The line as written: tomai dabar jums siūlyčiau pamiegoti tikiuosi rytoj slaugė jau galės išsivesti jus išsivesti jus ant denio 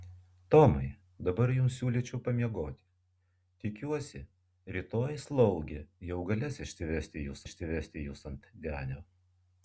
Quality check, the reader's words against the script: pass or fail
pass